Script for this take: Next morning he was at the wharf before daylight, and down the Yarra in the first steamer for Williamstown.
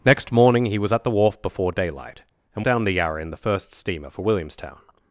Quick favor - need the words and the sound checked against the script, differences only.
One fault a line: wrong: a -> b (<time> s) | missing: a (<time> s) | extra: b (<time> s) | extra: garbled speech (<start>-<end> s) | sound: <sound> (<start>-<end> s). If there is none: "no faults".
no faults